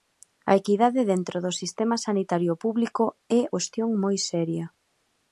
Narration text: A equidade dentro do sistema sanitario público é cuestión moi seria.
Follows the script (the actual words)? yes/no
yes